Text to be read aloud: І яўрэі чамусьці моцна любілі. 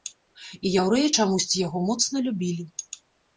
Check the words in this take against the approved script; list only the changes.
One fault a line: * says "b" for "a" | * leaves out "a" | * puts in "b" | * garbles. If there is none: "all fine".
* puts in "яго"